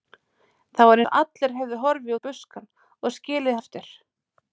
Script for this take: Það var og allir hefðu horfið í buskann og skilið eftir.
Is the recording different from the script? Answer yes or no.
no